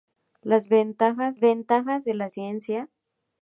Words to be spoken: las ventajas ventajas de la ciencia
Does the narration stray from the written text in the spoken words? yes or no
no